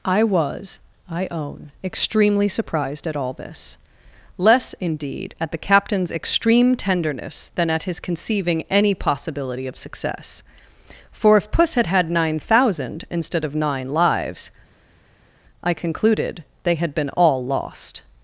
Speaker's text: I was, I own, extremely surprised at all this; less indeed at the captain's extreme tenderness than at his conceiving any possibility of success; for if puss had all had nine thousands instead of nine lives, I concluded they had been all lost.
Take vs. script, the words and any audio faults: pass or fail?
fail